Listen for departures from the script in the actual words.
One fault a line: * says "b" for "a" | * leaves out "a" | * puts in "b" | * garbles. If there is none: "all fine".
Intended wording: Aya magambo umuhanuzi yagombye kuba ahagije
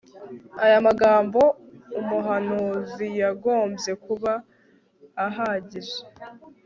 all fine